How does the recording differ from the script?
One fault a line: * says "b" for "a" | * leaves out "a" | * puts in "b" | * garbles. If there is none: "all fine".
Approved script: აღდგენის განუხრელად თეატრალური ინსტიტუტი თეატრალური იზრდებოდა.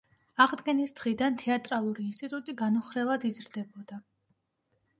* says "დღიდან" for "განუხრელად"
* says "განუხრელად" for "თეატრალური"